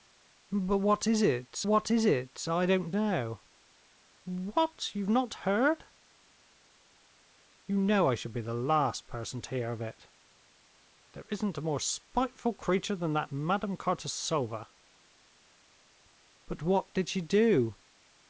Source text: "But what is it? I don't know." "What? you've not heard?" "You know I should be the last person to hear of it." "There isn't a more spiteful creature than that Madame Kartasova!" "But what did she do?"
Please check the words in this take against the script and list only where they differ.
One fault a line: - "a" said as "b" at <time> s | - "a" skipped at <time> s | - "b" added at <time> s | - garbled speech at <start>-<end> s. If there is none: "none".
- "what is it" added at 1.6 s